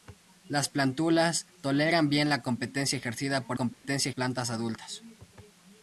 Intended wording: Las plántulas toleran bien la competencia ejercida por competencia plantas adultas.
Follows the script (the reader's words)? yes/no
yes